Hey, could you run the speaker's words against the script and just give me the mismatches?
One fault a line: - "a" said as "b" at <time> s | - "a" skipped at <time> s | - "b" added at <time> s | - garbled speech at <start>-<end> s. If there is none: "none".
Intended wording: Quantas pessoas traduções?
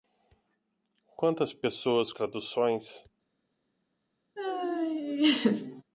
none